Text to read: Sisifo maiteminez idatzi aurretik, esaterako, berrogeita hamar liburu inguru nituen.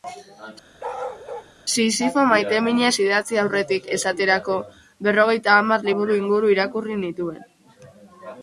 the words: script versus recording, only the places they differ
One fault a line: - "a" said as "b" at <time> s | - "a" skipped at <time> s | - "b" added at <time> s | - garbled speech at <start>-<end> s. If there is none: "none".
- "irakurri" added at 6.6 s